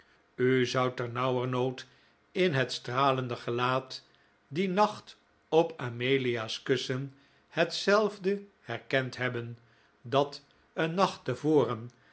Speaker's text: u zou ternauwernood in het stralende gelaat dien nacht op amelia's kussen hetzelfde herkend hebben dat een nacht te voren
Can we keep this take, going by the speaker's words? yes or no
yes